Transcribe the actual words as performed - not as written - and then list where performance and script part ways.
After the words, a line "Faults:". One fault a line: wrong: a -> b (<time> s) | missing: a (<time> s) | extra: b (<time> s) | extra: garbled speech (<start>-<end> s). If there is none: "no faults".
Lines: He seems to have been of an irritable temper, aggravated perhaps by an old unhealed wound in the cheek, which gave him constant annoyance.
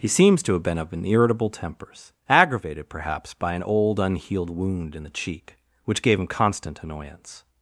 He seems to have been of an irritable tempers, aggravated perhaps by an old unhealed wound in the cheek, which gave him constant annoyance.
Faults:
wrong: temper -> tempers (1.5 s)